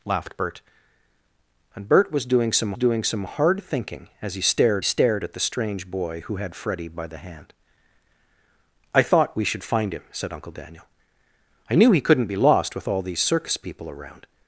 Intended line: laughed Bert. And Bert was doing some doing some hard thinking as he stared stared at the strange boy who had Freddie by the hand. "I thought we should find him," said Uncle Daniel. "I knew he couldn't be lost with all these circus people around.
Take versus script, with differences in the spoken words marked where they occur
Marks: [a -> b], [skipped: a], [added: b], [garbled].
laughed Bert. And Bert was doing some doing some hard thinking as he stared stared at the strange boy who had Freddie by the hand. "I thought we should find him," said Uncle Daniel. "I knew he couldn't be lost with all these circus people around.